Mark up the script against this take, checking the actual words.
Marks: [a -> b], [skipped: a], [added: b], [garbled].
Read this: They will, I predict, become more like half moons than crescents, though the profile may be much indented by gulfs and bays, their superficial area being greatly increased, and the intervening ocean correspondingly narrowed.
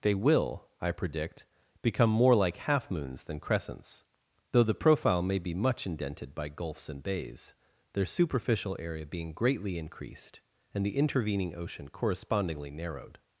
They will, I predict, become more like half moons than crescents, though the profile may be much indented by gulfs and bays, their superficial area being greatly increased, and the intervening ocean correspondingly narrowed.